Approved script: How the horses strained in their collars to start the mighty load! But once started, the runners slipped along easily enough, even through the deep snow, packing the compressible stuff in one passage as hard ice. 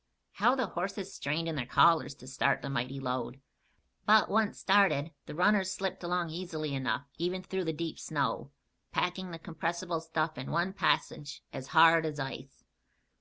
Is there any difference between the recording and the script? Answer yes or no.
yes